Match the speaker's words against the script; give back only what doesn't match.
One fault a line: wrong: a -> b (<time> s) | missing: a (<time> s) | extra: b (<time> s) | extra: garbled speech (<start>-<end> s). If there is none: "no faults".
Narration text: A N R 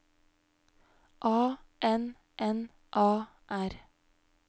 extra: N A (2.4 s)